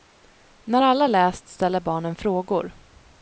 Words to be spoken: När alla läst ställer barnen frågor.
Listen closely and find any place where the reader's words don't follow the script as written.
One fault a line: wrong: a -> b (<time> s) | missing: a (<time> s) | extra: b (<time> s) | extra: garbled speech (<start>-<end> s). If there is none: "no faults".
no faults